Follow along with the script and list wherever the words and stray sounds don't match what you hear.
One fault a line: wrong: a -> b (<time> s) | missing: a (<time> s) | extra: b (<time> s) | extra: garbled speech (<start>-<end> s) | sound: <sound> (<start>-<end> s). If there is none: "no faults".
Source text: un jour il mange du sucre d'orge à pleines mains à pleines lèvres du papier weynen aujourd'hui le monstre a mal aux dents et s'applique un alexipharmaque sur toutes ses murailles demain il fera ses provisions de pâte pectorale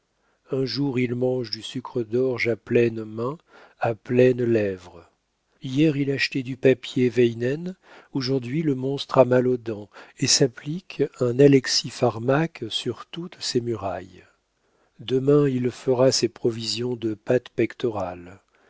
extra: hier il achetait (5.6 s)